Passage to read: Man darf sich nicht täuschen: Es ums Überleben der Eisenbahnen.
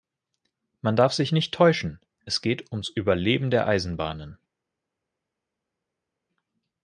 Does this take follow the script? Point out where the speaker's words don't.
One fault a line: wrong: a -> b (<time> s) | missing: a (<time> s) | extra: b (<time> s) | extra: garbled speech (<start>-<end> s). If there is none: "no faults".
extra: geht (2.4 s)